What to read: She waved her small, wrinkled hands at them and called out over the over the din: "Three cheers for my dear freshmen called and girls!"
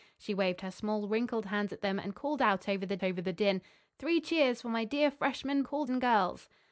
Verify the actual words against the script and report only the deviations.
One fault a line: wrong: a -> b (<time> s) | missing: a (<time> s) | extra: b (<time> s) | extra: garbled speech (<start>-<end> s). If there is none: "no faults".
no faults